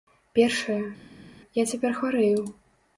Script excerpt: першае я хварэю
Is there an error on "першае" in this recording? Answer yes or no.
no